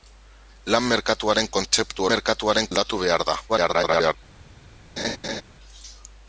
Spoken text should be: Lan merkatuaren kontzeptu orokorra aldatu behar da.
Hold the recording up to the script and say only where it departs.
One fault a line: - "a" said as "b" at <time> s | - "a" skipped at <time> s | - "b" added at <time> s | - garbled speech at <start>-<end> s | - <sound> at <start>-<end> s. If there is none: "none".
- "orokorra" said as "merkatuaren" at 2.1 s
- garbled speech at 3.5-4.2 s
- laugh at 5.0-5.4 s